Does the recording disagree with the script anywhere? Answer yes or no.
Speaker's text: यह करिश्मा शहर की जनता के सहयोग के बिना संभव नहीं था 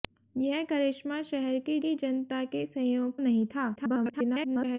yes